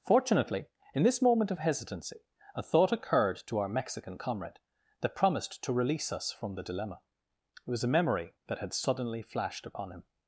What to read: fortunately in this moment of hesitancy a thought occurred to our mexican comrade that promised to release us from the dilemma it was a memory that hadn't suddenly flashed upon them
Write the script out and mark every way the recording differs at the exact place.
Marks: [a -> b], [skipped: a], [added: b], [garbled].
fortunately in this moment of hesitancy a thought occurred to our mexican comrade that promised to release us from the dilemma it was a memory that [hadn't -> had] suddenly flashed upon [them -> him]